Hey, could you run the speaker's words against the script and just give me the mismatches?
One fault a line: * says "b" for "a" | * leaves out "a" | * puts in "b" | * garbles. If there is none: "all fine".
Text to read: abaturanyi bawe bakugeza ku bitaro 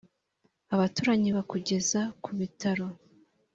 * leaves out "bawe"